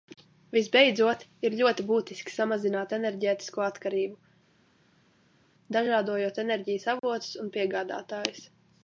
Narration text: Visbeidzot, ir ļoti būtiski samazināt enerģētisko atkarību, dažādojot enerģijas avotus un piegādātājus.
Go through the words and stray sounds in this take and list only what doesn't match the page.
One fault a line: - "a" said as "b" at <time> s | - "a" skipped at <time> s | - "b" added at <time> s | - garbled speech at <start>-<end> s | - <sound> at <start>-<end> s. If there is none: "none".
none